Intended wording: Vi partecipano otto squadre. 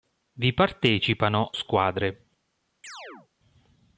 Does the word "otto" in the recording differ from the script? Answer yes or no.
yes